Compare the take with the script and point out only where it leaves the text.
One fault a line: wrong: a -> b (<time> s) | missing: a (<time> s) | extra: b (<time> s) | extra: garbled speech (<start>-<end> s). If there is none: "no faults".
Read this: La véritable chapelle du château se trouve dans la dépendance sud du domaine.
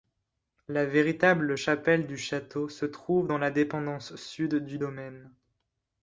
no faults